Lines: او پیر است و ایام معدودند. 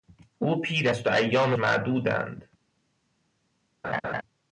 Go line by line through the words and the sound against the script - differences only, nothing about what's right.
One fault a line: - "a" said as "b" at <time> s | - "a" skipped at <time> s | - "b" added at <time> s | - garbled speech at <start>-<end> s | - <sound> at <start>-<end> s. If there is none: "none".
- laugh at 3.8-4.2 s